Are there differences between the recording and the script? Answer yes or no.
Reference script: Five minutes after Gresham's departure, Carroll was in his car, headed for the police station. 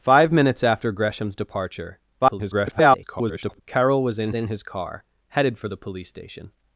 yes